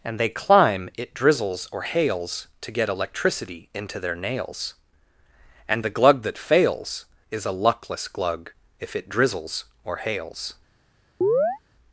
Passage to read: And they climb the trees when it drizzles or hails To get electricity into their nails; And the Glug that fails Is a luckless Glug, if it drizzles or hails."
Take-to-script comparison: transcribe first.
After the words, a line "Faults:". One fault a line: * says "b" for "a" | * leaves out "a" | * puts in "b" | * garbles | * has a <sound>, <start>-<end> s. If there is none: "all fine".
And they climb it drizzles or hails To get electricity into their nails; And the Glug that fails Is a luckless Glug, if it drizzles or hails."
Faults:
* leaves out "the trees when"
* has a chirp, 11.2-11.6 s